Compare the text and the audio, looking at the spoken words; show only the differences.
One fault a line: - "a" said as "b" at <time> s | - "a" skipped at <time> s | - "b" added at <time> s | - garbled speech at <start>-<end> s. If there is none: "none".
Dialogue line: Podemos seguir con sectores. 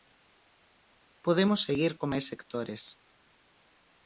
- "máis" added at 2.1 s